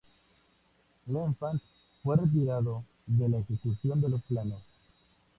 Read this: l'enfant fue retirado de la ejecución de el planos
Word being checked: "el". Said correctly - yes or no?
no